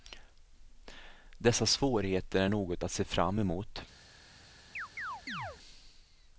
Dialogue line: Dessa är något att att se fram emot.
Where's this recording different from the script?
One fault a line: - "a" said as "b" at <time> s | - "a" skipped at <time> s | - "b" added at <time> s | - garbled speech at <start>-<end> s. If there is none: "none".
- "svårigheter" added at 1.6 s
- "att" skipped at 2.9 s